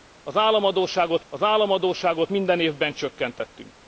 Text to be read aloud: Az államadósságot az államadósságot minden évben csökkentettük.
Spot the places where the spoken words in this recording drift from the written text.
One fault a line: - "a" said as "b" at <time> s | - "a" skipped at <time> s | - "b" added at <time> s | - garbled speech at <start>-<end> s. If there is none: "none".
none